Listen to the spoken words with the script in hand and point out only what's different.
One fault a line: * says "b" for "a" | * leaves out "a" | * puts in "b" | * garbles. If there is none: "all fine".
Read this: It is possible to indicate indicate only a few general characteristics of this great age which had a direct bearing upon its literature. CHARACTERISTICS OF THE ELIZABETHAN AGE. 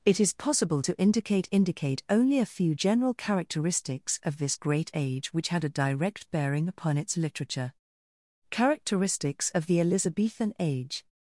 all fine